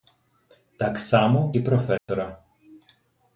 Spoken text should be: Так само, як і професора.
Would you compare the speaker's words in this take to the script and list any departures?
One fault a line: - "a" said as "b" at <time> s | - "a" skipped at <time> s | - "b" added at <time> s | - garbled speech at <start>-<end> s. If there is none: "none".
- "як" skipped at 1.5 s